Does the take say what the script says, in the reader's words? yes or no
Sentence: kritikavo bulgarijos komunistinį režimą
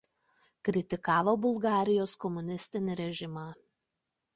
yes